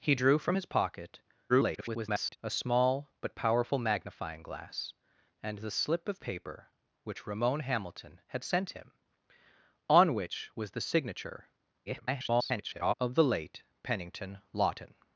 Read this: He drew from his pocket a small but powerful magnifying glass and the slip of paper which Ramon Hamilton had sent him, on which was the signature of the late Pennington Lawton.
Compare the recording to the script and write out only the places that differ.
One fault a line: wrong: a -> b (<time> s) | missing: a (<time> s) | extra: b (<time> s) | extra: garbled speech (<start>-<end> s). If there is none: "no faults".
extra: garbled speech (1.5-2.4 s)
extra: garbled speech (11.9-12.9 s)